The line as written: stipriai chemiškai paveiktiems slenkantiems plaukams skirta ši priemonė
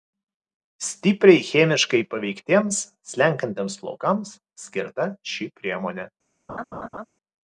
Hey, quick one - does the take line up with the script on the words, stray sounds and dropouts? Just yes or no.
no